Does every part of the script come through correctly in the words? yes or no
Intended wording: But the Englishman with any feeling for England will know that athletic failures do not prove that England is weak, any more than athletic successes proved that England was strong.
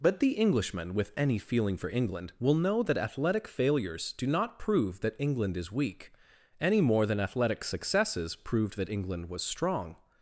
yes